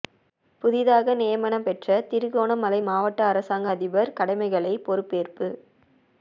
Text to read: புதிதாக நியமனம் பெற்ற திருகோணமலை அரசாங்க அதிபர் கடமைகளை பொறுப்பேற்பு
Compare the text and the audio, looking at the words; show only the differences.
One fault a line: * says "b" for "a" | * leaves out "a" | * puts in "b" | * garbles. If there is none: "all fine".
* puts in "மாவட்ட"